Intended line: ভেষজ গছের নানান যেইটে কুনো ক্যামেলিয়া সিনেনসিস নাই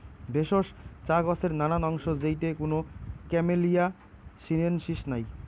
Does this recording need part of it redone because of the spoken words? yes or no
yes